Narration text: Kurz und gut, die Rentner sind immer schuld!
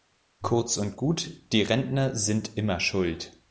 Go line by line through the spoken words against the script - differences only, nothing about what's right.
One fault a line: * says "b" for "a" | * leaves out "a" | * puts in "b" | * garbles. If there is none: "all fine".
all fine